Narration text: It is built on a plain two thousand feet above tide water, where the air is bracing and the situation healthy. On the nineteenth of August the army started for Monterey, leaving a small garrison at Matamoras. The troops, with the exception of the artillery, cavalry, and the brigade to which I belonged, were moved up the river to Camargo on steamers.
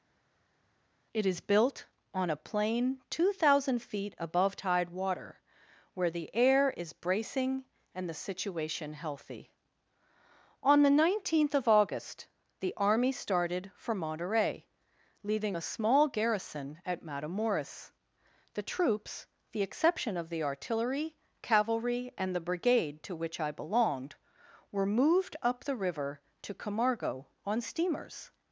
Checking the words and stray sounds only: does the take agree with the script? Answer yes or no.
no